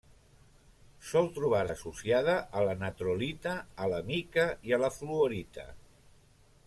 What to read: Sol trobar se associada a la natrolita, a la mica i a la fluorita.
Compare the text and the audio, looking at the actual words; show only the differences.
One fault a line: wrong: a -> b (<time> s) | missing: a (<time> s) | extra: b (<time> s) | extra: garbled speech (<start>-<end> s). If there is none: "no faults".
missing: se (1.6 s)